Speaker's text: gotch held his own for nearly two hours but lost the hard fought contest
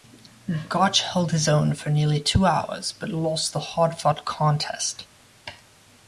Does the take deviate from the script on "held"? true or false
false